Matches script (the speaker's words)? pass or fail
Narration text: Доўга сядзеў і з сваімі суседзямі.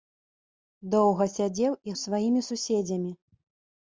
pass